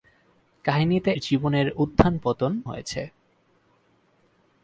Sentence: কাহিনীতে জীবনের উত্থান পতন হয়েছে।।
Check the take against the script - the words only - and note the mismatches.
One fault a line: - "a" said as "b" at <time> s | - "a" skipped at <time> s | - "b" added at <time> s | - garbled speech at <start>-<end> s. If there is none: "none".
none